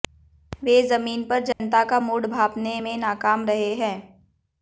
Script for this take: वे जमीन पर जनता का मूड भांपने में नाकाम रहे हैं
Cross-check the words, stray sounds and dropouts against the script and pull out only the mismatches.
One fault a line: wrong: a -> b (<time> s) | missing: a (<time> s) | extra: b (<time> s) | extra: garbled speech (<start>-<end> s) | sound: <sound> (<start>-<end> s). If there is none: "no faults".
sound: dropout (1.5-1.6 s)